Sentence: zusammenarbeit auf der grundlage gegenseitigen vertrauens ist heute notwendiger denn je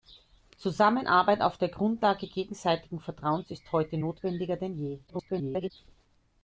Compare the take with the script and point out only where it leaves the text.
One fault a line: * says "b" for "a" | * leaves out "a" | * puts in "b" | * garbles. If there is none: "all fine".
* garbles